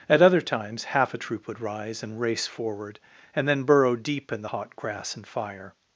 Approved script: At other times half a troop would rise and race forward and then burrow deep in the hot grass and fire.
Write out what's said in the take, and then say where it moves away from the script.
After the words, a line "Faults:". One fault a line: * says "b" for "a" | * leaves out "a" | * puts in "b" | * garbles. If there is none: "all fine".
At other times half a troop would rise and race forward and then burrow deep in the hot grass and fire.
Faults:
all fine